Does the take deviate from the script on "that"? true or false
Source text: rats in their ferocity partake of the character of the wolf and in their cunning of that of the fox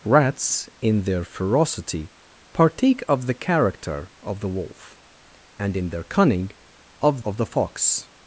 true